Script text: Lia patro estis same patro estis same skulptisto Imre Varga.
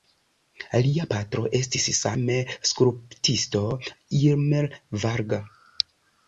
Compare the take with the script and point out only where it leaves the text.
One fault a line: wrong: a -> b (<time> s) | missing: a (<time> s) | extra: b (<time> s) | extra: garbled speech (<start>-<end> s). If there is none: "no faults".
missing: patro estis same (2.4 s)